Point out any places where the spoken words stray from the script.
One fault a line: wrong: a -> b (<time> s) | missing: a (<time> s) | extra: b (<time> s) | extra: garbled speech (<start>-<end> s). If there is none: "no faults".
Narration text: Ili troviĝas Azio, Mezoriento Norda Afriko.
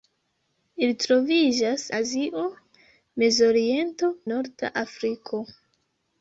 no faults